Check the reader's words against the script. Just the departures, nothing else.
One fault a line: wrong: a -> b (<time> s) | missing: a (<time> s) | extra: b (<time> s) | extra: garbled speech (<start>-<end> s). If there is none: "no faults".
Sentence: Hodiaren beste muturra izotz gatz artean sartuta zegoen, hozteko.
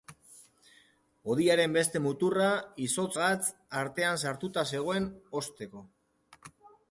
no faults